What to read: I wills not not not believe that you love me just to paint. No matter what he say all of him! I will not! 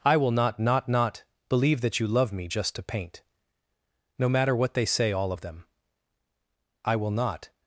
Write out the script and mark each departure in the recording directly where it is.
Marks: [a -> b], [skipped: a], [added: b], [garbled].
I [wills -> will] not not not believe that you love me just to paint. No matter what [he -> they] say all of [him! -> them] I will not!